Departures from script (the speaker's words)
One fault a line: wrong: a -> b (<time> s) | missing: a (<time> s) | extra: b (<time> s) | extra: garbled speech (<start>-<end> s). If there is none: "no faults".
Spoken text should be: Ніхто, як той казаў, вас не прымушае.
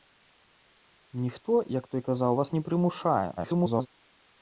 extra: garbled speech (3.4-3.9 s)